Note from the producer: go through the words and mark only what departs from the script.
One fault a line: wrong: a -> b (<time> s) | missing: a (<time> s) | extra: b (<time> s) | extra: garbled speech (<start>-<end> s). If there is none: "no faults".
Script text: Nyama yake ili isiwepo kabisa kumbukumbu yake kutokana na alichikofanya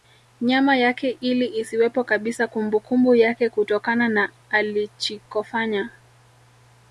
no faults